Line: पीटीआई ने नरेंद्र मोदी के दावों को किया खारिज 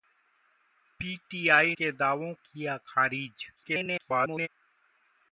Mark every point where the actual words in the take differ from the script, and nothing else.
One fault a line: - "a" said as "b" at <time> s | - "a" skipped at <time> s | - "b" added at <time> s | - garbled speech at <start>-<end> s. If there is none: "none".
- "ने नरेंद्र मोदी" skipped at 1.8 s
- "को" skipped at 2.3 s
- garbled speech at 3.6-4.5 s